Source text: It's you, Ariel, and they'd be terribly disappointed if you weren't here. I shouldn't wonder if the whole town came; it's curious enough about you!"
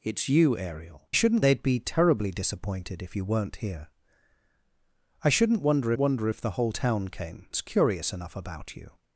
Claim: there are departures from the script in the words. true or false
true